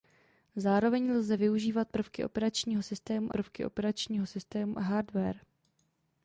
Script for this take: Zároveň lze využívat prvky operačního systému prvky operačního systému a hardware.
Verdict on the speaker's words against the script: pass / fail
pass